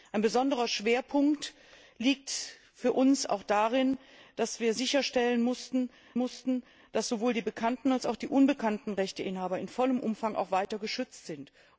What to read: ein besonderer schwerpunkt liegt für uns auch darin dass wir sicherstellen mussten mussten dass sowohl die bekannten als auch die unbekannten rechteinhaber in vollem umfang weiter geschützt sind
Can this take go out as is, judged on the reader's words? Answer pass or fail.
pass